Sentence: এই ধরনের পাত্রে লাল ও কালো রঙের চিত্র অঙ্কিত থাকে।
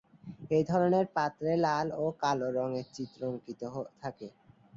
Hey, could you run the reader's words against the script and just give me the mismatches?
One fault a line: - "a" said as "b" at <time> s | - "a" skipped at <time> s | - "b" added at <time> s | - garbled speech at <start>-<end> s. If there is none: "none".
none